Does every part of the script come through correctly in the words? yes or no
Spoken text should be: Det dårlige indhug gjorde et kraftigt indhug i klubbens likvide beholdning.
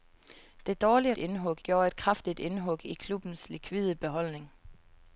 yes